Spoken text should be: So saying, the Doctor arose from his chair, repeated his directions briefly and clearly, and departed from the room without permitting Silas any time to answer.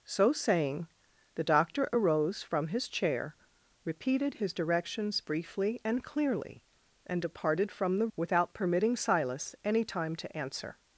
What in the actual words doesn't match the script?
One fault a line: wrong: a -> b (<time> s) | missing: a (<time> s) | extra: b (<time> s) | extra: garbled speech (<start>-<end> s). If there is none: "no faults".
missing: room (8.1 s)